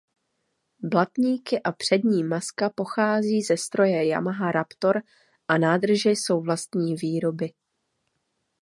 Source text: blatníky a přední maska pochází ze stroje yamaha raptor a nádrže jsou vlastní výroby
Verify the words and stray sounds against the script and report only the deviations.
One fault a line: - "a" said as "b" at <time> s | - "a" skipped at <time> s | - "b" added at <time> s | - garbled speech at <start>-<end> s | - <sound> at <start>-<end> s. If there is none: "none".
none